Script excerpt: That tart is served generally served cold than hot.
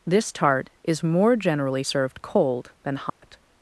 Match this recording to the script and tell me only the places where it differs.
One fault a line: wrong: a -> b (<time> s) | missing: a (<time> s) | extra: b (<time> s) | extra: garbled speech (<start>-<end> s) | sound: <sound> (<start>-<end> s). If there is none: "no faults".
wrong: That -> This (0.1 s)
wrong: served -> more (1.0 s)
sound: dropout (3.1-3.2 s)